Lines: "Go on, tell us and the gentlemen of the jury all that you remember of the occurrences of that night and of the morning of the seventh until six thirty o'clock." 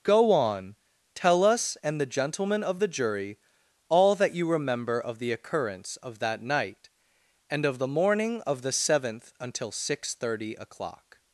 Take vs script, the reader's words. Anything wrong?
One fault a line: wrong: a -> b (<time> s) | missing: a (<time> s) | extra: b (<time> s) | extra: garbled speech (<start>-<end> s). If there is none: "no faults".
wrong: occurrences -> occurrence (5.3 s)